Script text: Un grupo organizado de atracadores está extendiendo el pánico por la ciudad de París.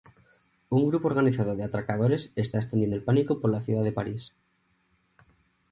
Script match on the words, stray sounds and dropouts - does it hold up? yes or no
yes